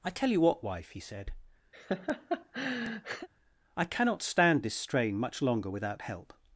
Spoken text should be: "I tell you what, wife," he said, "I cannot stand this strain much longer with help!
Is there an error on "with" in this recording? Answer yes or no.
yes